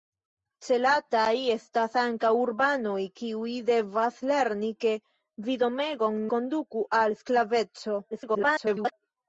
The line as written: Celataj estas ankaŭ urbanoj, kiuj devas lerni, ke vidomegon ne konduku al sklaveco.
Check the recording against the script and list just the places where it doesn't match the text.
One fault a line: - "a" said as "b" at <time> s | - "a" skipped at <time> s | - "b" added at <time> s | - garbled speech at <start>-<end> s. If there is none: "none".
- "ne" skipped at 6.2 s
- garbled speech at 8.1-8.9 s